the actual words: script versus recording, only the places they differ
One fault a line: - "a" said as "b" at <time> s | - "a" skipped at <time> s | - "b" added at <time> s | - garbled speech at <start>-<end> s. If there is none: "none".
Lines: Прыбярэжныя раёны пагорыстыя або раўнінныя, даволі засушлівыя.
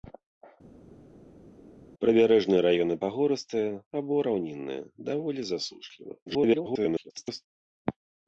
- garbled speech at 6.3-7.4 s